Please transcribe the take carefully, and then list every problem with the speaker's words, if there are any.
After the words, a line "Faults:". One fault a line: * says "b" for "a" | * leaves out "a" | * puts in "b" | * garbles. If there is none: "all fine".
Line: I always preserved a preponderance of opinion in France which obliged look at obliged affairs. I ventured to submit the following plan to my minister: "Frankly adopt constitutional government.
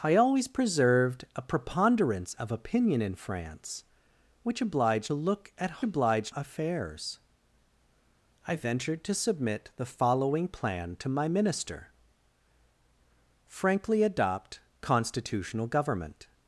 I always preserved a preponderance of opinion in France which obliged look at obliged affairs. I ventured to submit the following plan to my minister: "Frankly adopt constitutional government.
Faults:
all fine